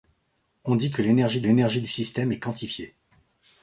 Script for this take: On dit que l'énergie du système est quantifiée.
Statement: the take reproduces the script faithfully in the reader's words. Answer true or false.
false